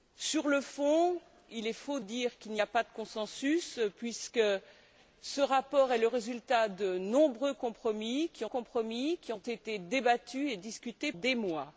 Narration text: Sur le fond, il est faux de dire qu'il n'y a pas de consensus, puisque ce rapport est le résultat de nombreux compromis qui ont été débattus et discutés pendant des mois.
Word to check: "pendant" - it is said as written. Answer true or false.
false